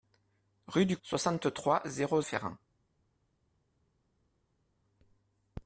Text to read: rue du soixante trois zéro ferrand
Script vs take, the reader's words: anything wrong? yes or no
no